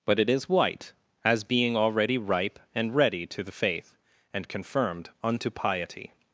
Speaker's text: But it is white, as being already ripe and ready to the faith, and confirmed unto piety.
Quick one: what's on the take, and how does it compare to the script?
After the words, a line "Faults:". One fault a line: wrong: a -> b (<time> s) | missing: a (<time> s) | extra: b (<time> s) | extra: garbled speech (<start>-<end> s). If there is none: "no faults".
But it is white, as being already ripe and ready to the faith, and confirmed unto piety.
Faults:
no faults